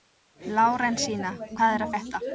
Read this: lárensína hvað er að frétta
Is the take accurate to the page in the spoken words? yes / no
yes